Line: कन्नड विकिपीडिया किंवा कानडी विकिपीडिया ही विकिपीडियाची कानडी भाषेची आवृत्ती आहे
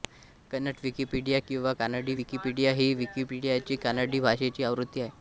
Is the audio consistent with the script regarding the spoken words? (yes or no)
yes